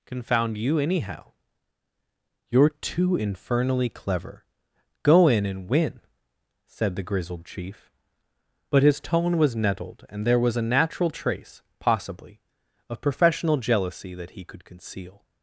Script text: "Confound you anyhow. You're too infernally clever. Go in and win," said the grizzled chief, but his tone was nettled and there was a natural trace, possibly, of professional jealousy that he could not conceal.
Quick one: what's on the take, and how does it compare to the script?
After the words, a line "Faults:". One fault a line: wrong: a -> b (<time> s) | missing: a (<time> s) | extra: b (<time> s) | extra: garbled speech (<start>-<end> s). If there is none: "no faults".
"Confound you anyhow. You're too infernally clever. Go in and win," said the grizzled chief, but his tone was nettled and there was a natural trace, possibly, of professional jealousy that he could conceal.
Faults:
missing: not (14.6 s)